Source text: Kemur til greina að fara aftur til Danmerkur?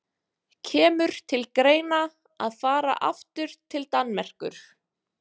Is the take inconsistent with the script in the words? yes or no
no